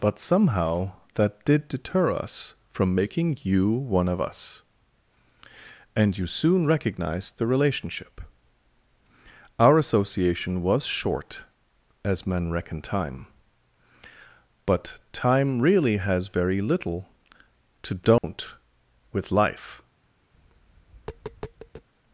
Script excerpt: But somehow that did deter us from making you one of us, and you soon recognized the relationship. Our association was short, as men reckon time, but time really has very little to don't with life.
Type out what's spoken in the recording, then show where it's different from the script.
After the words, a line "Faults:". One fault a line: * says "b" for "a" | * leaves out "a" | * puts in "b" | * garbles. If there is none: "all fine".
But somehow that did deter us from making you one of us, and you soon recognized the relationship. Our association was short, as men reckon time, but time really has very little to don't with life.
Faults:
all fine